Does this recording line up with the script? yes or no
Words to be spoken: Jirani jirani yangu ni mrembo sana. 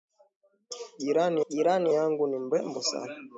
yes